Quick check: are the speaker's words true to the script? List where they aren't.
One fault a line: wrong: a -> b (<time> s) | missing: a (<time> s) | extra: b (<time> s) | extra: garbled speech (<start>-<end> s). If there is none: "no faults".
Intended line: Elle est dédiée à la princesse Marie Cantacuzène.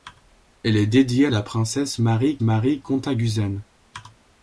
extra: Marie (2.4 s)